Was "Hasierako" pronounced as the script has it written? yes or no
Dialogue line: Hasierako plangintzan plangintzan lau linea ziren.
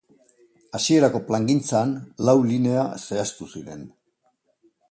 yes